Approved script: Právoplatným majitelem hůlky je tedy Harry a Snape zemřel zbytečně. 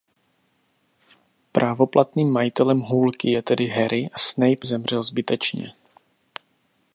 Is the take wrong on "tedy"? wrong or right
right